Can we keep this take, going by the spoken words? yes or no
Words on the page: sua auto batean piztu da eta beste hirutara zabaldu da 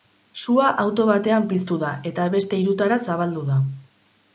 yes